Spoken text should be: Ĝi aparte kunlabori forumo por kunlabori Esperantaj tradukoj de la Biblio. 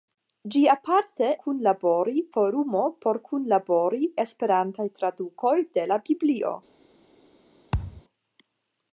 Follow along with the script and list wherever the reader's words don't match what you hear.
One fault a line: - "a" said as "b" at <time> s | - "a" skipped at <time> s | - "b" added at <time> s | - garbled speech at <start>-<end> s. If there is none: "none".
none